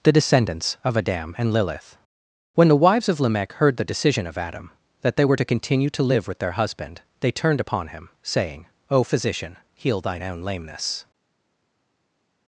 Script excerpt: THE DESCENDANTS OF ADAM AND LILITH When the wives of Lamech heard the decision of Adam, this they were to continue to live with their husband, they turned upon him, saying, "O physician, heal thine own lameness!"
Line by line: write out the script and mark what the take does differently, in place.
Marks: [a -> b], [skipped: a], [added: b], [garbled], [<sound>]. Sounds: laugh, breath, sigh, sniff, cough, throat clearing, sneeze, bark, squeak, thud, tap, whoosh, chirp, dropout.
THE DESCENDANTS OF ADAM AND LILITH When the wives of Lamech heard the decision of Adam, [this -> that] they were to continue to live with their husband, they turned upon him, saying, "O physician, heal thine own lameness!"